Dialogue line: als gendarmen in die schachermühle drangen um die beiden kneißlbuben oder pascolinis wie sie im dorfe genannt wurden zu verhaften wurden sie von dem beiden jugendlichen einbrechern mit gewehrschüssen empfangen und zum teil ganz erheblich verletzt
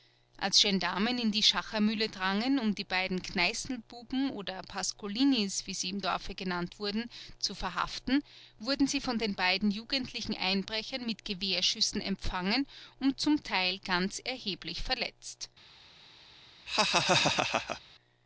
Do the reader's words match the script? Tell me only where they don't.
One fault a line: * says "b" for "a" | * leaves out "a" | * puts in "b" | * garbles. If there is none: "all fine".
* says "den" for "dem"